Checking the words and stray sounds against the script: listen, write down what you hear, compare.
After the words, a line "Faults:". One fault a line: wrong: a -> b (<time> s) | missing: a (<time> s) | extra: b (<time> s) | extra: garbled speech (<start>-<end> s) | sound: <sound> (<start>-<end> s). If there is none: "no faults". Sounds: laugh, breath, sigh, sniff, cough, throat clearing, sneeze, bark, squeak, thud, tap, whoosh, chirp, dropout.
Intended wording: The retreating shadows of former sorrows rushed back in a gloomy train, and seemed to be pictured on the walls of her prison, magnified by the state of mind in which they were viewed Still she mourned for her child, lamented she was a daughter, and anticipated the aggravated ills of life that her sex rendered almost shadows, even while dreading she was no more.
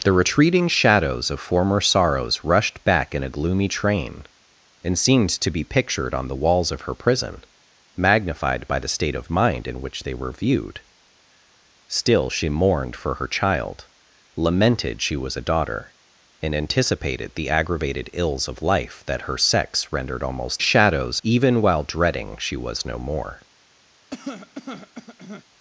The retreating shadows of former sorrows rushed back in a gloomy train, and seemed to be pictured on the walls of her prison, magnified by the state of mind in which they were viewed Still she mourned for her child, lamented she was a daughter, and anticipated the aggravated ills of life that her sex rendered almost shadows, even while dreading she was no more.
Faults:
sound: cough (24.1-25.4 s)